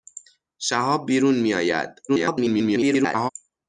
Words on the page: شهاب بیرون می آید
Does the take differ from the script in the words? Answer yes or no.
yes